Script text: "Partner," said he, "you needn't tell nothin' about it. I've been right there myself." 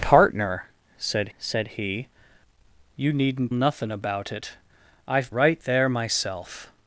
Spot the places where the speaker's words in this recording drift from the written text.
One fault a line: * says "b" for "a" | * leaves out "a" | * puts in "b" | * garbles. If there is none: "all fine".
* puts in "said"
* leaves out "tell"
* leaves out "been"